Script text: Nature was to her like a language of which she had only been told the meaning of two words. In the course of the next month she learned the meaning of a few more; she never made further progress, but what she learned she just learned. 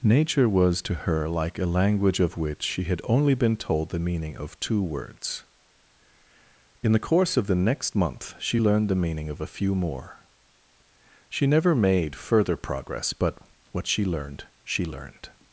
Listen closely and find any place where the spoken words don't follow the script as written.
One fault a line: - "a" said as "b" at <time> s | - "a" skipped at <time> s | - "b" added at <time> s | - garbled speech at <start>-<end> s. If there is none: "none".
- "just" skipped at 14.8 s